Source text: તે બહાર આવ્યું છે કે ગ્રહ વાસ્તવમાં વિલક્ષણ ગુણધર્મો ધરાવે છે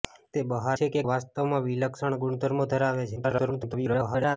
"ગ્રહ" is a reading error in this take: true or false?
true